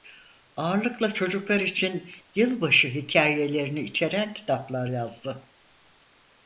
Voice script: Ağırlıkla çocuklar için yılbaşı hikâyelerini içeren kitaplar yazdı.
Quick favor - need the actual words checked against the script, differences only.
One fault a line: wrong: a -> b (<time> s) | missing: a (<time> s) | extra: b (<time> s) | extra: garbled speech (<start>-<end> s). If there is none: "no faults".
no faults